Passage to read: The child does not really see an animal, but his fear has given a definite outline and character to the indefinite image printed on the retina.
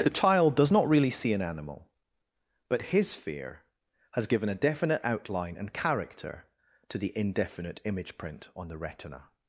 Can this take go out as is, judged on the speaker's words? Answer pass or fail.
fail